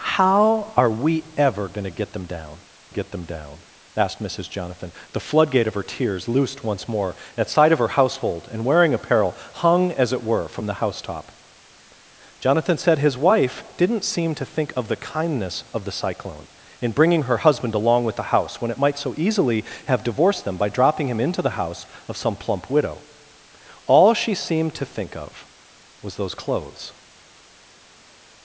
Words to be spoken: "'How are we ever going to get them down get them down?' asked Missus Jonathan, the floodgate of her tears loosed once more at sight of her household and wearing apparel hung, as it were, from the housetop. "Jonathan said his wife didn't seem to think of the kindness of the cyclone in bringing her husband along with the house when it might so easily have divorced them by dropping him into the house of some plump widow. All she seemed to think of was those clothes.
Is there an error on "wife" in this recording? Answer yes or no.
no